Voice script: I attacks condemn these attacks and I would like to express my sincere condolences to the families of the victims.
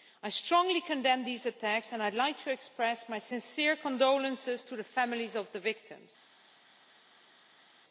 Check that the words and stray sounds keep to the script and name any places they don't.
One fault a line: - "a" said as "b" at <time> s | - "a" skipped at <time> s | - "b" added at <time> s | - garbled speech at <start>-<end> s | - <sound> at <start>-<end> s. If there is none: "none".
- "attacks" said as "strongly" at 0.3 s